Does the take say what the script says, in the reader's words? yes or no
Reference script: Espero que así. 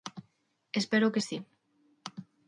yes